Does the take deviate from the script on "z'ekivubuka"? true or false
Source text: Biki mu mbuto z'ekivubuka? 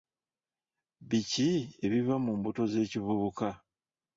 false